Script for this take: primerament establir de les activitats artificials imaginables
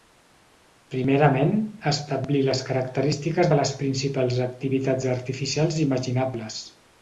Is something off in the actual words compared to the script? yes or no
yes